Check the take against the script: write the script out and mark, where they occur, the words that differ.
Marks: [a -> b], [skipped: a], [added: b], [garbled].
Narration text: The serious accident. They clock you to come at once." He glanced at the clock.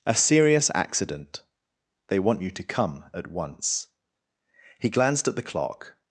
[The -> A] serious accident. They [clock -> want] you to come at once." He glanced at the clock.